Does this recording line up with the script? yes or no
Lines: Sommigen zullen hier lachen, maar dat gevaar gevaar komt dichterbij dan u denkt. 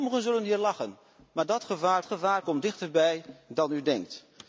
yes